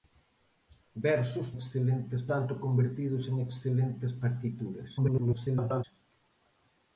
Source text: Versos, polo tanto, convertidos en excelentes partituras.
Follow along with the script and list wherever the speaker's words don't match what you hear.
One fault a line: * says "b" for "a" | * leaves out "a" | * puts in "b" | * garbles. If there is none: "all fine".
* says "excelentes" for "polo"
* garbles